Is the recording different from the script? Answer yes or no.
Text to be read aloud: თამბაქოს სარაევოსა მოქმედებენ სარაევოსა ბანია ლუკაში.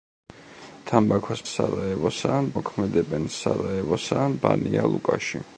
no